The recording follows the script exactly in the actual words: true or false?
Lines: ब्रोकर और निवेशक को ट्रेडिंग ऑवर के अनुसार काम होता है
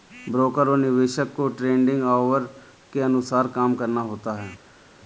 false